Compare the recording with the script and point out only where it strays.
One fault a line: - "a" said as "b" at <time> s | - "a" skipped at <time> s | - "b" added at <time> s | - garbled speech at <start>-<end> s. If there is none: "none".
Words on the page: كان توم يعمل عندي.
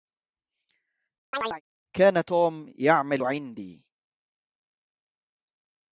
none